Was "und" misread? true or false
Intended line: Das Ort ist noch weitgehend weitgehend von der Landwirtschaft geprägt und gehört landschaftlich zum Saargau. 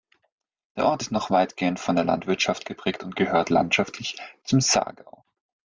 false